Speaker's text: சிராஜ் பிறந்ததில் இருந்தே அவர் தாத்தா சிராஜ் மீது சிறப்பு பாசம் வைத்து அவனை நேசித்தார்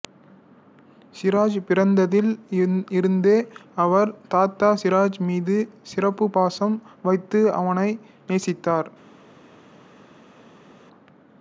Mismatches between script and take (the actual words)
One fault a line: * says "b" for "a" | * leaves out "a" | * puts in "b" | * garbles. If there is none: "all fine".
all fine